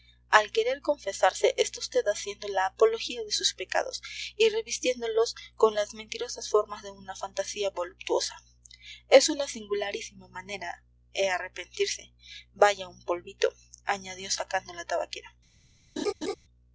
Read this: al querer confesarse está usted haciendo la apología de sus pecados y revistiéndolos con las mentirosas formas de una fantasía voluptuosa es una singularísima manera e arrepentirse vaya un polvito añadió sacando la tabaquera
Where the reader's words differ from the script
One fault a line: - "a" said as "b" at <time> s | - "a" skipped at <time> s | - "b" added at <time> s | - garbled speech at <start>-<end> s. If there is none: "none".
none